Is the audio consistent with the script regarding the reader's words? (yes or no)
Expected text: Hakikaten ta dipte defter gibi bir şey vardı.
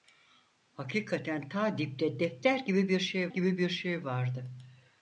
no